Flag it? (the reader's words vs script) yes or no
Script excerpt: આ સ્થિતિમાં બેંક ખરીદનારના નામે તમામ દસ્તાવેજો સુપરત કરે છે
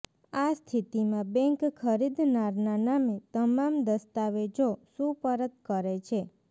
no